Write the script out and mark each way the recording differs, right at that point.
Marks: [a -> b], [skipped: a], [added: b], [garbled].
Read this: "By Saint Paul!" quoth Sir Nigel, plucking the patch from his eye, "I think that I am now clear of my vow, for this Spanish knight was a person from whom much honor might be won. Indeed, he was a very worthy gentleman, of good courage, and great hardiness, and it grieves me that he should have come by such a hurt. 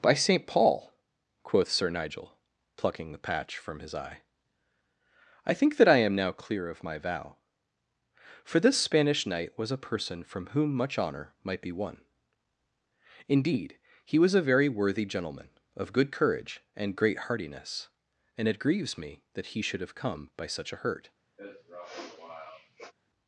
"By Saint Paul!" quoth Sir Nigel, plucking the patch from his eye, "I think that I am now clear of my vow, for this Spanish knight was a person from whom much honor might be won. Indeed, he was a very worthy gentleman, of good courage, and great hardiness, and it grieves me that he should have come by such a hurt.